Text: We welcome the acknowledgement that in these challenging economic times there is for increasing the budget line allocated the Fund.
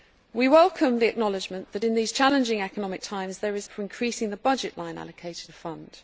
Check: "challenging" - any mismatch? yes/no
no